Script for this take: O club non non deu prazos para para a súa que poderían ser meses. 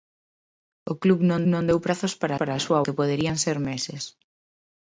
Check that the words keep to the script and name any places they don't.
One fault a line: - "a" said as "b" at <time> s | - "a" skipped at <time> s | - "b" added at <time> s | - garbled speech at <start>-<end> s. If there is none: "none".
none